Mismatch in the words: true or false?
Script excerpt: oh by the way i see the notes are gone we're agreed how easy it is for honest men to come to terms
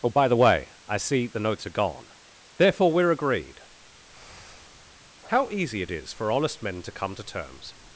true